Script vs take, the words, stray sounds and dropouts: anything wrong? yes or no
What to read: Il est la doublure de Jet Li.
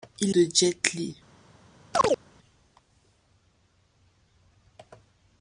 yes